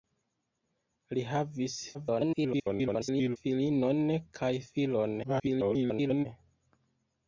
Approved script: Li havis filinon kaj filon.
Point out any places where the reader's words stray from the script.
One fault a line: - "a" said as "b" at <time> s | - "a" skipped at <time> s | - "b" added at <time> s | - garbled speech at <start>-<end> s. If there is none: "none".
- garbled speech at 1.9-3.4 s
- garbled speech at 5.2-6.3 s